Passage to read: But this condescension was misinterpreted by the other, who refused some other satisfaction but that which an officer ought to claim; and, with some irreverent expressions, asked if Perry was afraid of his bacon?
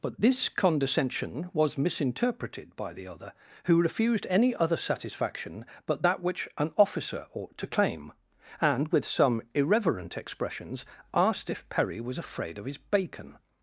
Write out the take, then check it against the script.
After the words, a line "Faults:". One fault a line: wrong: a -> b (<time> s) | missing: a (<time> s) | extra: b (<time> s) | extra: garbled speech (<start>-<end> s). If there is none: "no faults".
But this condescension was misinterpreted by the other, who refused any other satisfaction but that which an officer ought to claim; and, with some irreverent expressions, asked if Perry was afraid of his bacon?
Faults:
wrong: some -> any (4.3 s)